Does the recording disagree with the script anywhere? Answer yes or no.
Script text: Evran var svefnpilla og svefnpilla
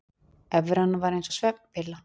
yes